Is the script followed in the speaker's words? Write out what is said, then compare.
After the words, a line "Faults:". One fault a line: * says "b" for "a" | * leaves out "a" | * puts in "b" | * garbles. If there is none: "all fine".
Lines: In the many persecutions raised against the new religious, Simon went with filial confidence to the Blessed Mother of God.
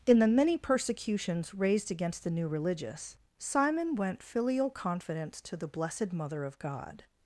In the many persecutions raised against the new religious, Simon went filial confidence to the Blessed Mother of God.
Faults:
* leaves out "with"